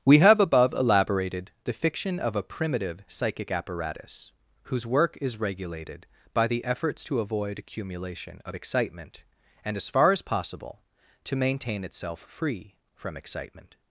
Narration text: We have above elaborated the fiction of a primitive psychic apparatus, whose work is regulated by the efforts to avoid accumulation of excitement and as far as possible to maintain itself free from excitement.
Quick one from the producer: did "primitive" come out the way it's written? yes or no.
yes